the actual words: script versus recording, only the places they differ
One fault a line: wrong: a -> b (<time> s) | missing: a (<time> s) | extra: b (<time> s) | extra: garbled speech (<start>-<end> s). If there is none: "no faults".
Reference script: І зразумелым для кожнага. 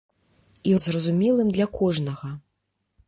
no faults